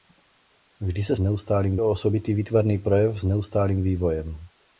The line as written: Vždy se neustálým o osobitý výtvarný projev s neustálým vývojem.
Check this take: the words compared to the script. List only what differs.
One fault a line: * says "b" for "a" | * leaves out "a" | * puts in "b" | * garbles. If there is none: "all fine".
all fine